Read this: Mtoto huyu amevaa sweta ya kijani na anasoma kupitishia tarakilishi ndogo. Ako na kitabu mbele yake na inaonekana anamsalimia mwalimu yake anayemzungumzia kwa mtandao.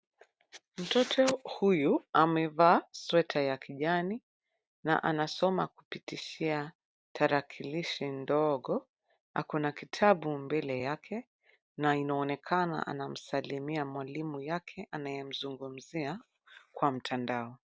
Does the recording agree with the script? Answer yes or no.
yes